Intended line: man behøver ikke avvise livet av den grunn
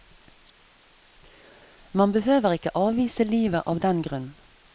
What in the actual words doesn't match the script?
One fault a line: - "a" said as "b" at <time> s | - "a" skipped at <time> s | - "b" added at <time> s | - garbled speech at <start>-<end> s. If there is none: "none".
none